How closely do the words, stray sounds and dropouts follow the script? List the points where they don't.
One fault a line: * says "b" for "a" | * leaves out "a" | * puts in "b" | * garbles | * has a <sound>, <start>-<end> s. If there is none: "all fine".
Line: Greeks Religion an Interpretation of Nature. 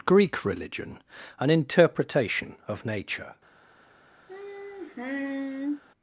* says "Greek" for "Greeks"
* has a sigh, 4.3-5.8 s